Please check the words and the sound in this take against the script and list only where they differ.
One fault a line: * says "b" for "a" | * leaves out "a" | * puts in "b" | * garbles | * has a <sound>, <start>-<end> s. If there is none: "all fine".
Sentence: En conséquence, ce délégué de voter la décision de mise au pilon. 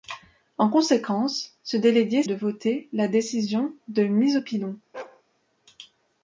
* has a bark, 4.9-5.2 s